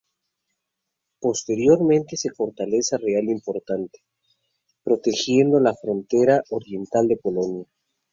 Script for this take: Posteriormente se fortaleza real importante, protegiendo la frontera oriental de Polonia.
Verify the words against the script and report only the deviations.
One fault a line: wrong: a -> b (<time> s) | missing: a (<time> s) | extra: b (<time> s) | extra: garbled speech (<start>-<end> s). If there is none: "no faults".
no faults